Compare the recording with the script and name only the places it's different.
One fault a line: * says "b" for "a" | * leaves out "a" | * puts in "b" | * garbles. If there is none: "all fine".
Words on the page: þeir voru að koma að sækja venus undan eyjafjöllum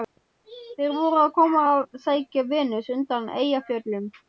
all fine